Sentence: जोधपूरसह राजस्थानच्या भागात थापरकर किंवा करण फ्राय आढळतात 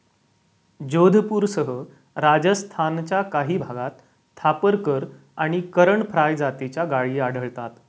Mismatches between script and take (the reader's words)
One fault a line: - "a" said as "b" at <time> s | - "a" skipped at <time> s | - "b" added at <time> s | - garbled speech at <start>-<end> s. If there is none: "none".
- "काही" added at 3.2 s
- "किंवा" said as "आणि" at 5.4 s
- "जातीच्या गायी" added at 6.4 s